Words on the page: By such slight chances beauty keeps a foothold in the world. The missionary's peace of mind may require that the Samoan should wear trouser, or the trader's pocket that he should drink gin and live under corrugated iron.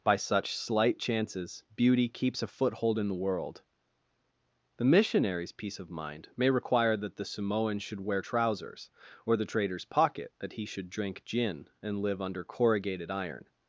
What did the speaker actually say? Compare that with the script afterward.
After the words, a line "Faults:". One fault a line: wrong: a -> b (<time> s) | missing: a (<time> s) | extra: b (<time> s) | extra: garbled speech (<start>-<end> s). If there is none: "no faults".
By such slight chances beauty keeps a foothold in the world. The missionary's peace of mind may require that the Samoan should wear trousers, or the trader's pocket that he should drink gin and live under corrugated iron.
Faults:
wrong: trouser -> trousers (8.2 s)